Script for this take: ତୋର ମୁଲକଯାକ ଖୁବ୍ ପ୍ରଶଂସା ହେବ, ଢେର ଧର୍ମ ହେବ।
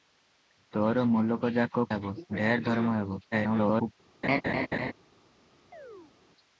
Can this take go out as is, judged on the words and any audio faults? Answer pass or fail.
fail